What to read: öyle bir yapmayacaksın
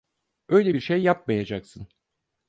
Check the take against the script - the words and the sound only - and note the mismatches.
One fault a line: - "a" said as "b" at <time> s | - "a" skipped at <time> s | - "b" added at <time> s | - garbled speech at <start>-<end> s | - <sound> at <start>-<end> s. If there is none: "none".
- "şey" added at 0.8 s